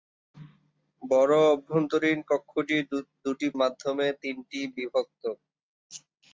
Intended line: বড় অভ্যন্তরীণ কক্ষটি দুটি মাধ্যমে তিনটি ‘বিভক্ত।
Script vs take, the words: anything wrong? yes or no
no